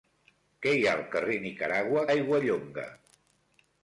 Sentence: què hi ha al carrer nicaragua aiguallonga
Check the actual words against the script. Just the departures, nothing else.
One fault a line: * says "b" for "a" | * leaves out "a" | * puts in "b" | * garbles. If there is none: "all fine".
all fine